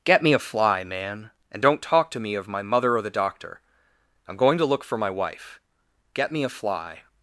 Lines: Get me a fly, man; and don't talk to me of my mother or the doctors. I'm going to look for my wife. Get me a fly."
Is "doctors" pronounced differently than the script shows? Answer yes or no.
yes